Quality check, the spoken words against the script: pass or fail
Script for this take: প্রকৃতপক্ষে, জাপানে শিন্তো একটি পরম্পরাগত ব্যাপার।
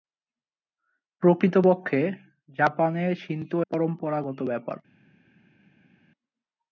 fail